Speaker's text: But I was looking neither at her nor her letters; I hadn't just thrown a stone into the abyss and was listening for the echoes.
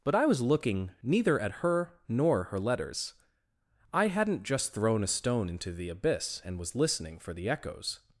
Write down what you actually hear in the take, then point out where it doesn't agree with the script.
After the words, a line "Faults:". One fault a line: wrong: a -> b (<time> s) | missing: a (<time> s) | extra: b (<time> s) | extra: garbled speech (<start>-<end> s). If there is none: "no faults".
But I was looking neither at her nor her letters; I hadn't just thrown a stone into the abyss and was listening for the echoes.
Faults:
no faults